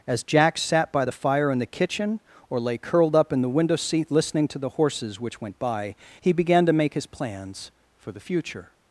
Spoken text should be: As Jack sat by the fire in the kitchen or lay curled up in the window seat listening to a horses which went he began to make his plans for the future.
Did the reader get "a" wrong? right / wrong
wrong